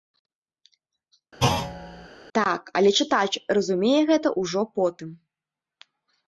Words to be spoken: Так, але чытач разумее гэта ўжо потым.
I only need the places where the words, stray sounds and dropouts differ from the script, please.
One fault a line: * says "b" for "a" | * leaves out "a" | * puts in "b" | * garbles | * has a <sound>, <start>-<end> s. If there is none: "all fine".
* has a thud, 1.4-2.1 s